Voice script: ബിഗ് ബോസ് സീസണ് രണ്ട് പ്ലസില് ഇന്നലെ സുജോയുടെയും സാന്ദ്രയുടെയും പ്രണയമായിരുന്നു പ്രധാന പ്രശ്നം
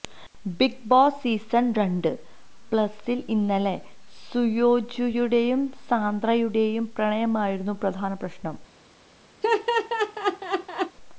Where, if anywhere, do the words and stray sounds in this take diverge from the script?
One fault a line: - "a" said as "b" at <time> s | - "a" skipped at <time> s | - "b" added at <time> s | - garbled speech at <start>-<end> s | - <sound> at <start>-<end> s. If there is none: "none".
- laugh at 9.4-11.0 s